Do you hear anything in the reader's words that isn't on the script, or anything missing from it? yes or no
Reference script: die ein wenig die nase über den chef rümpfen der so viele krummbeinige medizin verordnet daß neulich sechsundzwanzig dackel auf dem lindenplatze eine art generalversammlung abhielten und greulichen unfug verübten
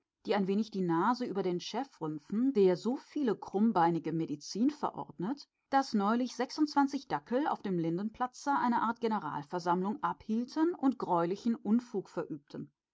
no